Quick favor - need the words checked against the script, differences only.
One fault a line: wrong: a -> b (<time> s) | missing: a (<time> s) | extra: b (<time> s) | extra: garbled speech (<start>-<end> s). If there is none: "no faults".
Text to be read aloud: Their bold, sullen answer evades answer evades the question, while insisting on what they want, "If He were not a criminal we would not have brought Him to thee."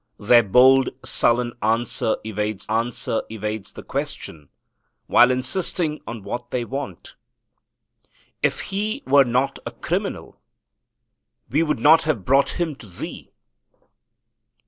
no faults